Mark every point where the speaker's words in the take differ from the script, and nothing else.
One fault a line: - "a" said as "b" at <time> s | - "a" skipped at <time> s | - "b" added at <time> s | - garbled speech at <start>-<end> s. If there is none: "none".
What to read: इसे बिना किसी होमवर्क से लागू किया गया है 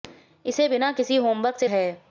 - "लागू किया गया" skipped at 1.7 s